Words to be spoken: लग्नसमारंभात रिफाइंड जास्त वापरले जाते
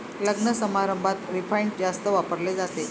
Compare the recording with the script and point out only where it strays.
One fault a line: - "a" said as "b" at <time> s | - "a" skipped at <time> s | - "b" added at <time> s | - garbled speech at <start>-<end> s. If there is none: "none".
none